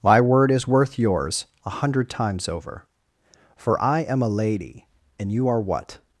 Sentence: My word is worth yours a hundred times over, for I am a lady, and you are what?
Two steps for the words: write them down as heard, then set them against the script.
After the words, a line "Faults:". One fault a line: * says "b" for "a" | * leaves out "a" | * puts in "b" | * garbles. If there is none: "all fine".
My word is worth yours a hundred times over, for I am a lady, and you are what?
Faults:
all fine